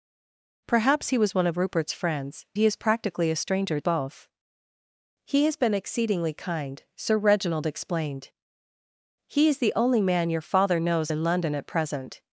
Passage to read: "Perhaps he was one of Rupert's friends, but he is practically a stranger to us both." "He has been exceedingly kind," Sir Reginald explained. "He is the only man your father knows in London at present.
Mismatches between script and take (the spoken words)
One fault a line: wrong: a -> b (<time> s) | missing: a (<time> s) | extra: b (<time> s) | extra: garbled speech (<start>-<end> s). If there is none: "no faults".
missing: but (2.5 s)
missing: to us (3.8 s)